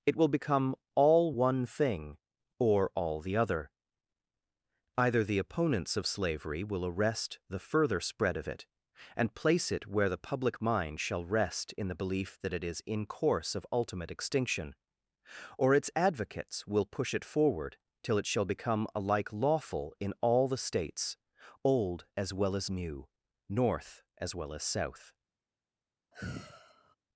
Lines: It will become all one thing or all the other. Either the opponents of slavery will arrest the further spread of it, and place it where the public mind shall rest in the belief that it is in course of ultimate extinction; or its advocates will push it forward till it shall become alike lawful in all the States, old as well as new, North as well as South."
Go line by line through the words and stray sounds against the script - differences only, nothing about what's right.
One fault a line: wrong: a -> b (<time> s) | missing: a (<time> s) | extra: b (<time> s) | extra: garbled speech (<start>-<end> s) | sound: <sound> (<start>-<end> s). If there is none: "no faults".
sound: sigh (26.1-27.0 s)